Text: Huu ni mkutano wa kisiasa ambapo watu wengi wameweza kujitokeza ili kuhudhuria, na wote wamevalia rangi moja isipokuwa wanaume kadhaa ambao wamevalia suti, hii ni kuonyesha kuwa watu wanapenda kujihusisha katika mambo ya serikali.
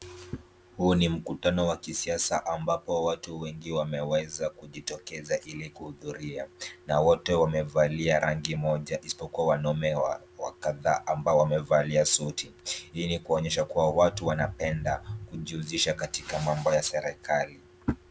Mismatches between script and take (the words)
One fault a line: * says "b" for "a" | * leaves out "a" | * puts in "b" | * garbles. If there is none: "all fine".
all fine